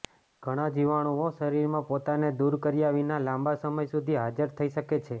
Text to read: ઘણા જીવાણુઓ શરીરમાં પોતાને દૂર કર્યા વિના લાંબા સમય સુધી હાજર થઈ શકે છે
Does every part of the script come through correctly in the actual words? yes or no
yes